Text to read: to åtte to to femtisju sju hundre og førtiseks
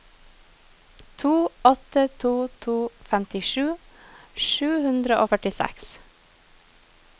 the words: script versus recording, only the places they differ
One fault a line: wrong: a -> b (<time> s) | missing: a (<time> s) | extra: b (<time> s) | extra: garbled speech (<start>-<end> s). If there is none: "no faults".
no faults